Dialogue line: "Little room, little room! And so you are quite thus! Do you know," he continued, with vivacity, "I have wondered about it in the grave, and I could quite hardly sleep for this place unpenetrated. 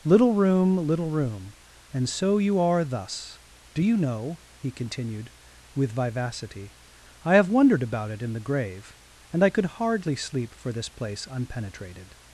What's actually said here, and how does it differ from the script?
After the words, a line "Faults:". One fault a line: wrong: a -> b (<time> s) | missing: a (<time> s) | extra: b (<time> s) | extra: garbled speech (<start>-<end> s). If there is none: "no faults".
"Little room, little room! And so you are thus! Do you know," he continued, with vivacity, "I have wondered about it in the grave, and I could hardly sleep for this place unpenetrated.
Faults:
missing: quite (2.8 s)
missing: quite (9.7 s)